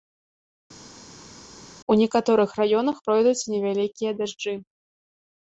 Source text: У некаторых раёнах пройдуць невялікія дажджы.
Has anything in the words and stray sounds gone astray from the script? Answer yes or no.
no